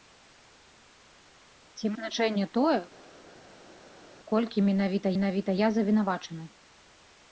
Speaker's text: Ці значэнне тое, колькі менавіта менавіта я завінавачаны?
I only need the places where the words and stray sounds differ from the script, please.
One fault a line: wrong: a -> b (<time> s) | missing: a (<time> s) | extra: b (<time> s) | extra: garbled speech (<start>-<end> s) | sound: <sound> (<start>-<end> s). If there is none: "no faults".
no faults